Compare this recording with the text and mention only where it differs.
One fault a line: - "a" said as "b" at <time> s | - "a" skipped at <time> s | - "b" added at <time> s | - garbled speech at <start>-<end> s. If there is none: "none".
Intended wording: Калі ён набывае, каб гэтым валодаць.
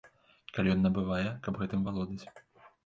none